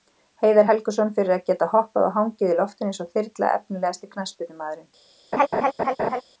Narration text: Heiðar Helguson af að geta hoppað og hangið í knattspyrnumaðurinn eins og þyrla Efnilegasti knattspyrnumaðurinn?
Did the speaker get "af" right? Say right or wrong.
wrong